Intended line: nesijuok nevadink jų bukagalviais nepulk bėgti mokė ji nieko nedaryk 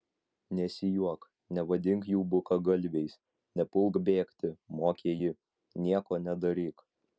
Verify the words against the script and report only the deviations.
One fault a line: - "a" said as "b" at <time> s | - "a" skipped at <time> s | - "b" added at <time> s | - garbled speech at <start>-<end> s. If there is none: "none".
none